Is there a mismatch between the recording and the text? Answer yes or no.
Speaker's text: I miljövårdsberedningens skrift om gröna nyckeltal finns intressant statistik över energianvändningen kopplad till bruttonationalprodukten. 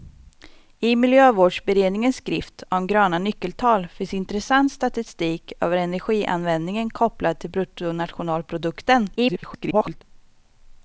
yes